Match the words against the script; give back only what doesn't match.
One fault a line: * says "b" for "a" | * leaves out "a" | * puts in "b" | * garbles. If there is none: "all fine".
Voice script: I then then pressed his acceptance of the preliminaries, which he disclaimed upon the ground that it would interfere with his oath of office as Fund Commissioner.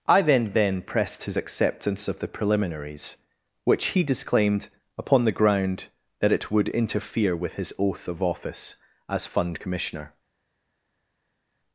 all fine